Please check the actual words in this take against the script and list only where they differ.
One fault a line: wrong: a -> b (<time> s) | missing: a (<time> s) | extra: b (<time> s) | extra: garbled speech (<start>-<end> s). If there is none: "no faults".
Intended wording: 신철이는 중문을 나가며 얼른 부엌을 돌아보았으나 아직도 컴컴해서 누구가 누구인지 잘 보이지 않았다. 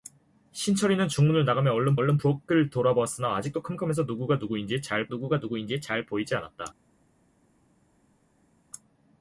extra: 얼른 (2.0 s)
extra: 누구가 누구인지 잘 (5.1 s)